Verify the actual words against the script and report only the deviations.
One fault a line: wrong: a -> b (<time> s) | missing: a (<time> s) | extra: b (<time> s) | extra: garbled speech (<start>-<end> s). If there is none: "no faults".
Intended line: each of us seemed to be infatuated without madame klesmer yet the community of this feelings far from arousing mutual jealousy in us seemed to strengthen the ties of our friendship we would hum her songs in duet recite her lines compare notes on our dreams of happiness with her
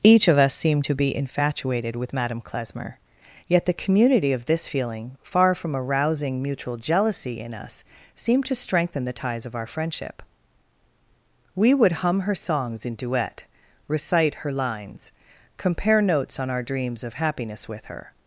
wrong: without -> with (2.0 s)
wrong: feelings -> feeling (4.7 s)